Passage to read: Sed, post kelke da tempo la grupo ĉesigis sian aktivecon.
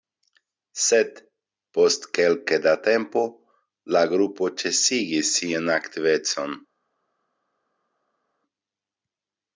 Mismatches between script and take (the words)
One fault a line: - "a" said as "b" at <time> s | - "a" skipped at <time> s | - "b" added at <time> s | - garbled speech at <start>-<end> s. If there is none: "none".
none